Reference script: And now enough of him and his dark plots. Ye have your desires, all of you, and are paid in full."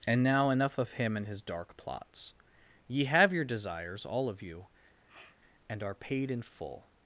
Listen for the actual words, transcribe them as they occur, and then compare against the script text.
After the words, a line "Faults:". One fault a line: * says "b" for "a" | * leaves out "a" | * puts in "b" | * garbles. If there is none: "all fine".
And now enough of him and his dark plots. Ye have your desires, all of you, and are paid in full."
Faults:
all fine